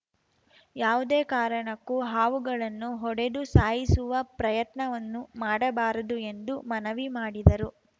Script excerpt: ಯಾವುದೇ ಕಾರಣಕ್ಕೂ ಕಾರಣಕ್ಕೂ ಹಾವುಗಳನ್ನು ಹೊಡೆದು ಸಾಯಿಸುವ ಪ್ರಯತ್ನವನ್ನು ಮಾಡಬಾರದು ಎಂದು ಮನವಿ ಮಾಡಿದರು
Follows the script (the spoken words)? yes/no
no